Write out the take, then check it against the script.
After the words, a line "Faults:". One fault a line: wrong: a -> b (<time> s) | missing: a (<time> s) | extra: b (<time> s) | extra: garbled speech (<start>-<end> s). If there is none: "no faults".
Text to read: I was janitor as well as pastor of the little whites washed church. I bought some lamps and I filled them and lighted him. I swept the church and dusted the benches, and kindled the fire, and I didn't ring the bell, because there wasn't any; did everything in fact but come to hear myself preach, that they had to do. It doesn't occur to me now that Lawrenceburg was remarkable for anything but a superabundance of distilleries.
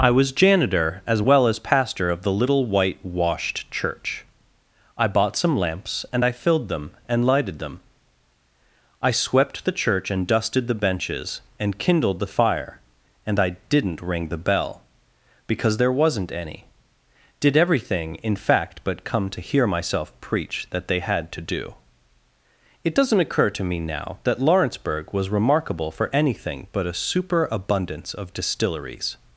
I was janitor as well as pastor of the little white washed church. I bought some lamps and I filled them and lighted them. I swept the church and dusted the benches, and kindled the fire, and I didn't ring the bell, because there wasn't any; did everything in fact but come to hear myself preach, that they had to do. It doesn't occur to me now that Lawrenceburg was remarkable for anything but a superabundance of distilleries.
Faults:
wrong: whites -> white (2.7 s)
wrong: him -> them (7.6 s)